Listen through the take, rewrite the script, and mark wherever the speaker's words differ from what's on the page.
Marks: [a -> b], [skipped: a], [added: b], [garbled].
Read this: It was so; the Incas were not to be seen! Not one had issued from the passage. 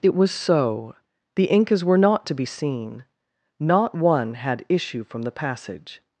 It was so; the Incas were not to be seen! Not one had [issued -> issue] from the passage.